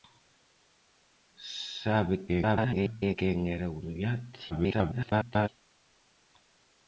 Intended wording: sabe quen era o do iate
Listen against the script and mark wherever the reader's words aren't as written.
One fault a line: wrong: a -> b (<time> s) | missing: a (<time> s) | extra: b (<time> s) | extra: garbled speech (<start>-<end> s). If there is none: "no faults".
extra: garbled speech (2.3-3.2 s)
extra: garbled speech (4.5-5.5 s)